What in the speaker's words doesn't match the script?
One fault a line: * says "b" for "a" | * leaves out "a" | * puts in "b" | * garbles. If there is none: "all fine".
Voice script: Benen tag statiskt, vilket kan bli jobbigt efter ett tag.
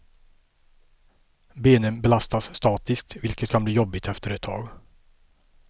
* says "belastas" for "tag"